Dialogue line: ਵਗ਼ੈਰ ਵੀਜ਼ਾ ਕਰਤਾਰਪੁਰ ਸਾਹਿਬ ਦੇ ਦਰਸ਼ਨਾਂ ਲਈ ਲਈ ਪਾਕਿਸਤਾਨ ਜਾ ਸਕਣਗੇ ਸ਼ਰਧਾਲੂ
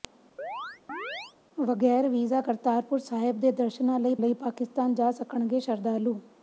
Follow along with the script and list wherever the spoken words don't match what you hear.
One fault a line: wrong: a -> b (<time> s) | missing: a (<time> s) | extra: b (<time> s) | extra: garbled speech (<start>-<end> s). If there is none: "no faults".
no faults